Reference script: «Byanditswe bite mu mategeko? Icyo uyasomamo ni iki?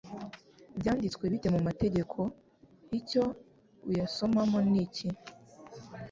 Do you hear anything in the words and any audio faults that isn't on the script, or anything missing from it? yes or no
no